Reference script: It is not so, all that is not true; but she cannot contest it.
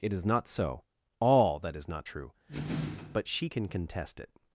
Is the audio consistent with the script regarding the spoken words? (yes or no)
no